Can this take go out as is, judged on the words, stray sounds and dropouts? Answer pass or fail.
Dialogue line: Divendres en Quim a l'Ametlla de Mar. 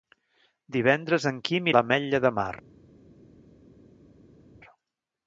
pass